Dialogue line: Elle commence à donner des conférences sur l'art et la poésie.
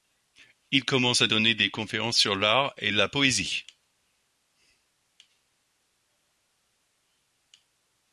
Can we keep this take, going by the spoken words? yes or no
no